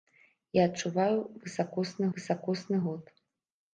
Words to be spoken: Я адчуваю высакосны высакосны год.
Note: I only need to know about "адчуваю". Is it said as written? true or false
true